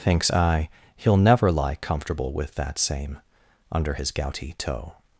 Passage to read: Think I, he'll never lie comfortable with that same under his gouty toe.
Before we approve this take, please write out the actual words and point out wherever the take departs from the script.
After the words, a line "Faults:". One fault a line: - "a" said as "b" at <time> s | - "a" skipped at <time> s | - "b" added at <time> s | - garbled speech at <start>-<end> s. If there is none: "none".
Thinks I, he'll never lie comfortable with that same under his gouty toe.
Faults:
- "Think" said as "Thinks" at 0.0 s